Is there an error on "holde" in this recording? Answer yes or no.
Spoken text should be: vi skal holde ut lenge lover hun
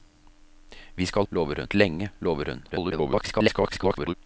yes